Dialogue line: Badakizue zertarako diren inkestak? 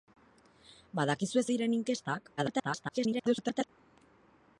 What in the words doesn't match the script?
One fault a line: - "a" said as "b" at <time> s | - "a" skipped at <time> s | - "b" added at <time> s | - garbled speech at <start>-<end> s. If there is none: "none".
- "zertarako" skipped at 1.4 s
- garbled speech at 2.4-3.7 s